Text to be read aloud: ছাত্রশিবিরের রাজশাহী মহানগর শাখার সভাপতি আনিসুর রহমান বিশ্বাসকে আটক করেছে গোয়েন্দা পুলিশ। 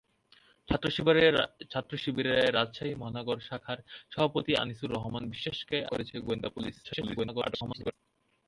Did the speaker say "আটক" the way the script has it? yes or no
no